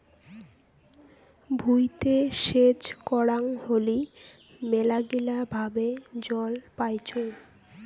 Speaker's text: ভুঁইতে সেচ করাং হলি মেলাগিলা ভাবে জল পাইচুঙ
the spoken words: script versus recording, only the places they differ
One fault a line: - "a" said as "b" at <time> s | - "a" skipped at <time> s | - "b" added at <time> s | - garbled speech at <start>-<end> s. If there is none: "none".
none